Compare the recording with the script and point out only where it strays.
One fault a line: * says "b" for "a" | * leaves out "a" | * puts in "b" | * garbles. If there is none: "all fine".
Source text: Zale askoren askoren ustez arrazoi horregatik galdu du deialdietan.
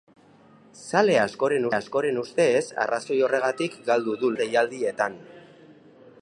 all fine